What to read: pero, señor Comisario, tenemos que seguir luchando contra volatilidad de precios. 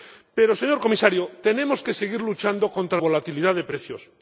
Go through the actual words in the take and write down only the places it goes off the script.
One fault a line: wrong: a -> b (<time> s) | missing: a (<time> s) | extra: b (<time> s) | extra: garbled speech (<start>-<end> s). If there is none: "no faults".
no faults